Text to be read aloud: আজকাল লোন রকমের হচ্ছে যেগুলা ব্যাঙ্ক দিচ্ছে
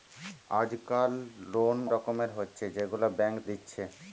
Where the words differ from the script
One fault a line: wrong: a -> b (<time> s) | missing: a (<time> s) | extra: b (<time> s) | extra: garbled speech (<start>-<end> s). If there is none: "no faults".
no faults